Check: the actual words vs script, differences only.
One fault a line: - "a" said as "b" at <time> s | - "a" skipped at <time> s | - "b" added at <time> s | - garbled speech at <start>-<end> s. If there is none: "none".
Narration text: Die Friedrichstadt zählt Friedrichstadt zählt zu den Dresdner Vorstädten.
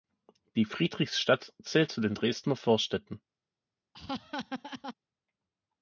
- "Friedrichstadt zählt" skipped at 1.9 s